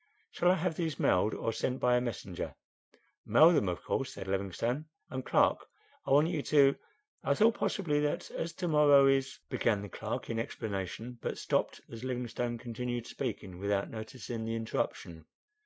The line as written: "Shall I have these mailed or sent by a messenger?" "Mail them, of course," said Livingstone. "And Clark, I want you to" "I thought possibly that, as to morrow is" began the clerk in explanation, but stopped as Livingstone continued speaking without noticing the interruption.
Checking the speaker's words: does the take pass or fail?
pass